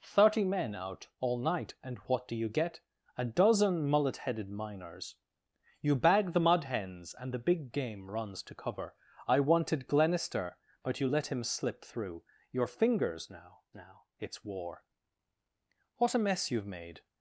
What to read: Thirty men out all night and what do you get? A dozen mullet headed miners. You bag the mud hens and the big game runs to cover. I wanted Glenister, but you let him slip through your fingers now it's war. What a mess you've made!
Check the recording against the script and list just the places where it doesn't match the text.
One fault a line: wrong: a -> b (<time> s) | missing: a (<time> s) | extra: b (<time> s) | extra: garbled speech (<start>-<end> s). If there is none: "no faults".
extra: now (13.7 s)